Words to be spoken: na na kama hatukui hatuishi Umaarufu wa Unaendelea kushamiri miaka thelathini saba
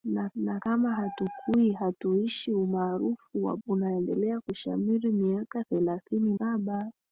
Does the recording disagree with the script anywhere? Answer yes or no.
no